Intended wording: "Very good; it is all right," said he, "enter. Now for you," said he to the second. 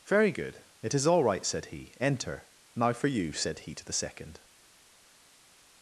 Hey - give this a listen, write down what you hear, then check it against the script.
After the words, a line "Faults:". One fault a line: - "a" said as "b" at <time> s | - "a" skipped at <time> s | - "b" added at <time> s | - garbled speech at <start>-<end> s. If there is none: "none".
"Very good; it is all right," said he, "enter. Now for you," said he to the second.
Faults:
none